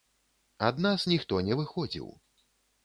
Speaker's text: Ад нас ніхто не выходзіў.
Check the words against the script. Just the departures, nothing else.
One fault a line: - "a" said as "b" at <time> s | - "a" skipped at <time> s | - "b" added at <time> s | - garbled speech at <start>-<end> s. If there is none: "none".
none